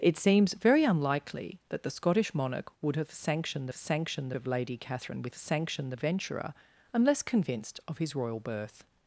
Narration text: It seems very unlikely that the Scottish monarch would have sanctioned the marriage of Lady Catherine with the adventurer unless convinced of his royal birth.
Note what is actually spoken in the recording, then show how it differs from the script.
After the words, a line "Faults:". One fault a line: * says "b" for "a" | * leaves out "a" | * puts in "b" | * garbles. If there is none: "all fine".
It seems very unlikely that the Scottish monarch would have sanctioned the sanctioned of Lady Catherine with sanctioned adventurer unless convinced of his royal birth.
Faults:
* says "sanctioned" for "marriage"
* says "sanctioned" for "the"